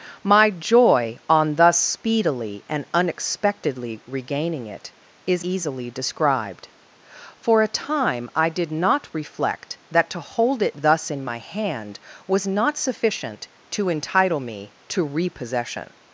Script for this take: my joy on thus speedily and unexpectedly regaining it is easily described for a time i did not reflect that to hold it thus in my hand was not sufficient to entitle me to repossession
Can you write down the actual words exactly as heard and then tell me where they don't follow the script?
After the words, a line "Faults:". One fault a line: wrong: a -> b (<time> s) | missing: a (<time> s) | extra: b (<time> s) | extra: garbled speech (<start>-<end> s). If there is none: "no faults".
my joy on thus speedily and unexpectedly regaining it is easily described for a time i did not reflect that to hold it thus in my hand was not sufficient to entitle me to repossession
Faults:
no faults